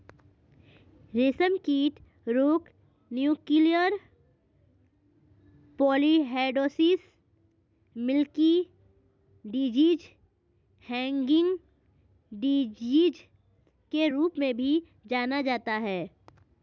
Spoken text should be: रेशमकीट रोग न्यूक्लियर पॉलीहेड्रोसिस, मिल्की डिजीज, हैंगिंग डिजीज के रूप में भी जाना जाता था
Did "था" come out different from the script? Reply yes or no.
yes